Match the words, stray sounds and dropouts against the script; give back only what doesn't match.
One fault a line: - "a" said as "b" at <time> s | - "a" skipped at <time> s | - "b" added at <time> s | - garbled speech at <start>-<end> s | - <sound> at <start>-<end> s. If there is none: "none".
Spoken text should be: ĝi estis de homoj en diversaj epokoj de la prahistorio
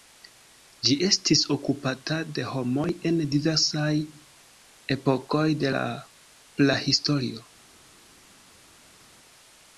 - "okupata" added at 1.6 s